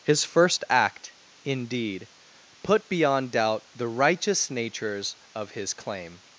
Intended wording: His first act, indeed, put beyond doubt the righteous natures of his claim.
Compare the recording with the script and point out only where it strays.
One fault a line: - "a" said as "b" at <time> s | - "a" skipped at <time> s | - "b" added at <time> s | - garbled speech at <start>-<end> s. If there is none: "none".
none